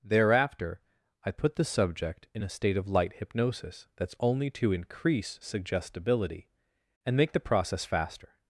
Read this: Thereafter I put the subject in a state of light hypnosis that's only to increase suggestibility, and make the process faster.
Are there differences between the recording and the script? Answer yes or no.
no